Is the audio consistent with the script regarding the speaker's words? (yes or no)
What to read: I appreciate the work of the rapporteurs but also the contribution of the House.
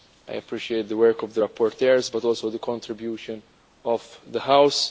yes